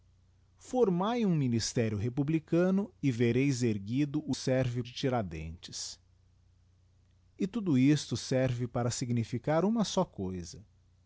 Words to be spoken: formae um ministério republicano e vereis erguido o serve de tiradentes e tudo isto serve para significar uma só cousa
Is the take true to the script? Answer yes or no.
yes